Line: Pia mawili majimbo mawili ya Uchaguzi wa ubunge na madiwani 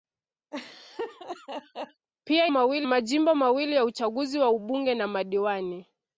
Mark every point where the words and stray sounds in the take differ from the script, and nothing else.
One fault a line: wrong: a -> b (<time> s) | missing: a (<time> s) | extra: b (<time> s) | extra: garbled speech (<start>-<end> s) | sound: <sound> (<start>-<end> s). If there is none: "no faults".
sound: laugh (0.5-2.1 s)